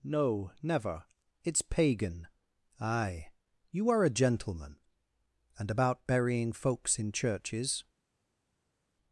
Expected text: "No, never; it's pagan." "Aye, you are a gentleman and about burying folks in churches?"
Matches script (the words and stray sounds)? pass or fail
pass